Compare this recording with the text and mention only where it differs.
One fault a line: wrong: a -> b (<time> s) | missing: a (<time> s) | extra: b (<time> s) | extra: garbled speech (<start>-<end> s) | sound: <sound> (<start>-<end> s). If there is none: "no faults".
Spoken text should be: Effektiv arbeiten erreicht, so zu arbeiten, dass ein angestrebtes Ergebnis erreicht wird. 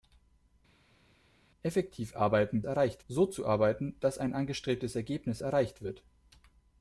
no faults